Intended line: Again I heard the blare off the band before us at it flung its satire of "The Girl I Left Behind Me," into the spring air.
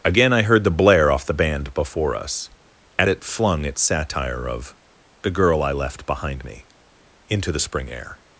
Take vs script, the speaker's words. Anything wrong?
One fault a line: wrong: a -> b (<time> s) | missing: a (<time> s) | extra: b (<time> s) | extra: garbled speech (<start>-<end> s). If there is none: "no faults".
no faults